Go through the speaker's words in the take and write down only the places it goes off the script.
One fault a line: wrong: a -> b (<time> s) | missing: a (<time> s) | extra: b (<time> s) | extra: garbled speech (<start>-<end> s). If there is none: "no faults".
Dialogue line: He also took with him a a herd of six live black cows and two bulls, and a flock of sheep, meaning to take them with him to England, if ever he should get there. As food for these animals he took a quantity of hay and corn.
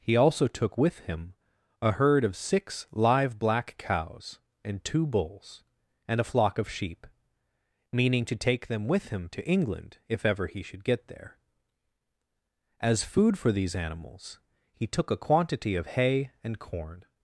missing: a (1.9 s)